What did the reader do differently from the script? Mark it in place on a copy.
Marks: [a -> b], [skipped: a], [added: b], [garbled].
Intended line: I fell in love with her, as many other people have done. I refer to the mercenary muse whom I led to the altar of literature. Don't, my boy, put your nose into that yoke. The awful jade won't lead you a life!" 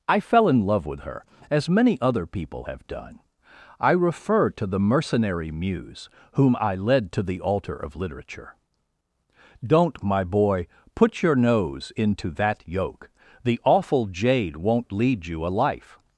I fell in love with her, as many other people have done. I refer to the mercenary muse whom I led to the altar of literature. Don't, my boy, put your nose into that yoke. The awful jade won't lead you a life!"